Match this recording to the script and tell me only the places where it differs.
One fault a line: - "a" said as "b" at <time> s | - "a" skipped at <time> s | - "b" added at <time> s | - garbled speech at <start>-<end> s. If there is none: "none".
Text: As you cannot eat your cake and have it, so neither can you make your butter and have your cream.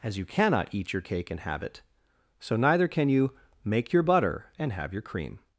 none